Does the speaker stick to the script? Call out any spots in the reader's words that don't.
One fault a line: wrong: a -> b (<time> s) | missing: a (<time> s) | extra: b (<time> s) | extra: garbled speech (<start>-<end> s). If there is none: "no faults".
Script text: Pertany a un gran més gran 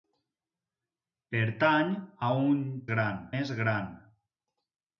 no faults